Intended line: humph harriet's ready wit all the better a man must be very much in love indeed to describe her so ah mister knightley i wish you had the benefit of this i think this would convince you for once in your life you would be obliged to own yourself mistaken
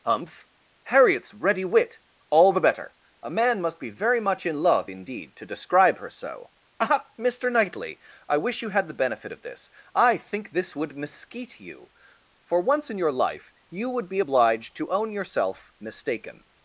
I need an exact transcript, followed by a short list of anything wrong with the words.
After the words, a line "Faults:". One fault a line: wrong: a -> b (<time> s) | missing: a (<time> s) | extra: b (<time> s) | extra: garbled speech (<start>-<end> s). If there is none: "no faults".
humph harriet's ready wit all the better a man must be very much in love indeed to describe her so ah mister knightley i wish you had the benefit of this i think this would mesquite you for once in your life you would be obliged to own yourself mistaken
Faults:
wrong: convince -> mesquite (11.0 s)